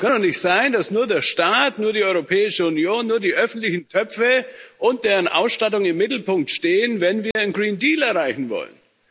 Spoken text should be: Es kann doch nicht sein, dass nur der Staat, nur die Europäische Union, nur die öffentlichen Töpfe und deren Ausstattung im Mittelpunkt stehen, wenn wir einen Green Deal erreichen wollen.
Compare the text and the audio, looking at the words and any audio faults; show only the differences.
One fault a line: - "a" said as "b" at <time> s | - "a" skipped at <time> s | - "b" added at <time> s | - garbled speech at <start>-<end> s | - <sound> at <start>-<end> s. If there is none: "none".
- dropout at 7.3-7.4 s